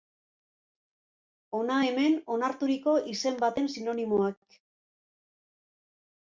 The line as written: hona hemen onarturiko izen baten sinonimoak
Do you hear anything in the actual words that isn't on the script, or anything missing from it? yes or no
no